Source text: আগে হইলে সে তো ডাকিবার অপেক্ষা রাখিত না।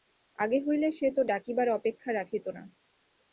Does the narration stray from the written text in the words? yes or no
no